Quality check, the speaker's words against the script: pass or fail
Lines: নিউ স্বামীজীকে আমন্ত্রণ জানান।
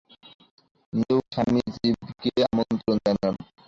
pass